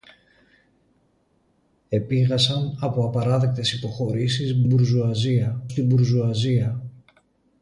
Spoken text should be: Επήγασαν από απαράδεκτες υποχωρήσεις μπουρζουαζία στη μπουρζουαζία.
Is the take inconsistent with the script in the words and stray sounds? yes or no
no